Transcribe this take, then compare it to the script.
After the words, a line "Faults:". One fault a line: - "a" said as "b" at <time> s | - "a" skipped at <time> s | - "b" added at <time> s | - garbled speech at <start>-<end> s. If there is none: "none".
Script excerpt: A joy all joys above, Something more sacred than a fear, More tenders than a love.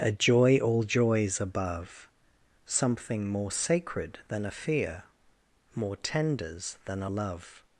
A joy all joys above, Something more sacred than a fear, More tenders than a love.
Faults:
none